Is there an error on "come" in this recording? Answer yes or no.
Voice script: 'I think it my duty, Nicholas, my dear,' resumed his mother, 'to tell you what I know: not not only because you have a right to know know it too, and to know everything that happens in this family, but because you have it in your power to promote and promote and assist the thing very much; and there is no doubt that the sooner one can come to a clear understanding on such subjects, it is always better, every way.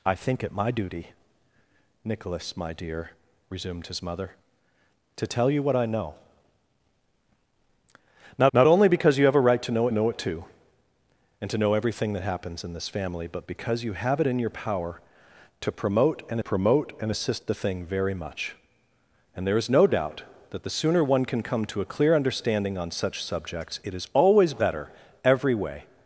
no